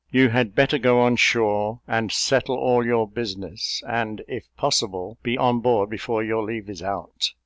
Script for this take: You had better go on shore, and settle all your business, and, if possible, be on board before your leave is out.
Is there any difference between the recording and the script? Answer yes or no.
no